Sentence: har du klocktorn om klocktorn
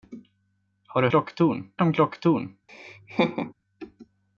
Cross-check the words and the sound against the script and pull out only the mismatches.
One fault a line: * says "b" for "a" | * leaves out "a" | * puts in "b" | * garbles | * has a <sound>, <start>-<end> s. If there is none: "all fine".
* has a laugh, 2.7-3.5 s